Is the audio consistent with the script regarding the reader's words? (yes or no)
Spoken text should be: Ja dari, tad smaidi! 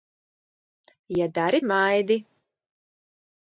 no